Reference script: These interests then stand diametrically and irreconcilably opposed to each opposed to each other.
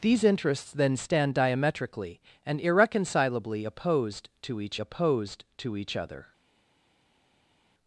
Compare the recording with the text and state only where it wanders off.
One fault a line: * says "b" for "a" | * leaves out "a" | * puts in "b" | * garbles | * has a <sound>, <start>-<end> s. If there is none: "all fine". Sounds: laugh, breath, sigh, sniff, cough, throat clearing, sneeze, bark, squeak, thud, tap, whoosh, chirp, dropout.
all fine